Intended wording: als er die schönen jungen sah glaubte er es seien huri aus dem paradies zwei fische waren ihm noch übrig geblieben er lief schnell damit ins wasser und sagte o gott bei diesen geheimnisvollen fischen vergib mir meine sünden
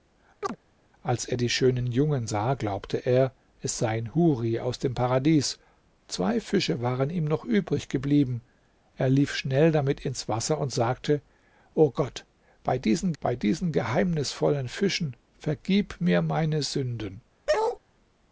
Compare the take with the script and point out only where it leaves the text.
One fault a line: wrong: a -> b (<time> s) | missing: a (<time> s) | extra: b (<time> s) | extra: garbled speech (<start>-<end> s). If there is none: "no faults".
extra: bei diesen (13.2 s)